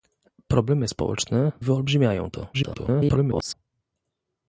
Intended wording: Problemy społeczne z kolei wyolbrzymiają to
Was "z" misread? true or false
true